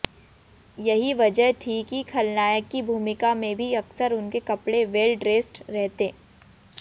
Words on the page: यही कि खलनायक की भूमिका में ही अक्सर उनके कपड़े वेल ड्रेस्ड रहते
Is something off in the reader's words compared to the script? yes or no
yes